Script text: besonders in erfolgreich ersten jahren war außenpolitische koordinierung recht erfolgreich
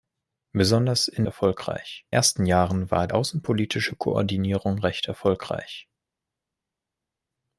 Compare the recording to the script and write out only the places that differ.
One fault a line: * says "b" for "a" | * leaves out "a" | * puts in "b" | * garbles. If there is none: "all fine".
all fine